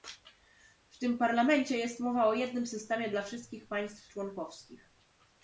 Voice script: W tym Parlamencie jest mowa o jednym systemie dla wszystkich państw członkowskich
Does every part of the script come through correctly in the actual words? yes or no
yes